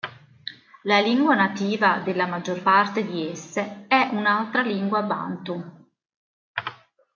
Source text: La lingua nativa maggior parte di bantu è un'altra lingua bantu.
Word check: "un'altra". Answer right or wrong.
right